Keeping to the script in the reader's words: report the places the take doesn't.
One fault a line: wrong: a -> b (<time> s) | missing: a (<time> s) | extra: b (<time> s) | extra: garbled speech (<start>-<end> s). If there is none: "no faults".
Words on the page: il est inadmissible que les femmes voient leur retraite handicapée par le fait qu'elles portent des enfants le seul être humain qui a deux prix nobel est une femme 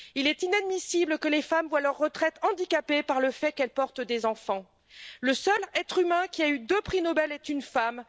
extra: eu (6.5 s)